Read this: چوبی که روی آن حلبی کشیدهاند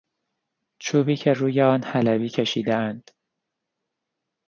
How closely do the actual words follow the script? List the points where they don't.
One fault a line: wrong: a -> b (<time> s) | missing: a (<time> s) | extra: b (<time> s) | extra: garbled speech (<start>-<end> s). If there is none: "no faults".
no faults